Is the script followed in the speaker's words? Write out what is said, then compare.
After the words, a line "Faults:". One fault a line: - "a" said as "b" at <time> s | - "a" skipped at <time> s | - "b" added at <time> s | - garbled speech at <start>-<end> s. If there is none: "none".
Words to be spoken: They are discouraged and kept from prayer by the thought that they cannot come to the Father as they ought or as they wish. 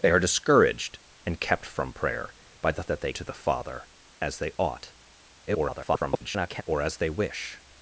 They are discouraged and kept from prayer by the that they to the Father as they ought [garbled] or as they wish.
Faults:
- "thought" skipped at 2.8 s
- "cannot come" skipped at 3.1 s
- garbled speech at 5.5-6.6 s